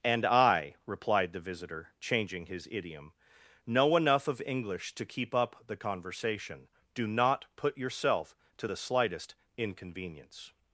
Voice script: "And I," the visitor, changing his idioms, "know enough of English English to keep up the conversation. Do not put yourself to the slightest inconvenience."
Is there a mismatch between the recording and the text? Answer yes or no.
yes